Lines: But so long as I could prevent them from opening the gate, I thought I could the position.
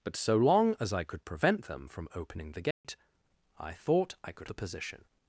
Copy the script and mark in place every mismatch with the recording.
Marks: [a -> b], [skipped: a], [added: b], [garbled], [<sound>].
But so long as I could prevent them from opening the gate, [dropout] I thought I could the position.